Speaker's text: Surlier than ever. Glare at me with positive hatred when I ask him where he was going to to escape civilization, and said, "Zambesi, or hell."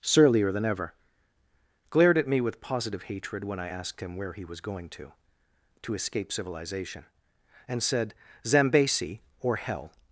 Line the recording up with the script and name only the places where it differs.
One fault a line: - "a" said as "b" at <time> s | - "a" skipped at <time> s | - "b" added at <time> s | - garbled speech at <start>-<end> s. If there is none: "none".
- "Glare" said as "Glared" at 1.9 s
- "ask" said as "asked" at 3.7 s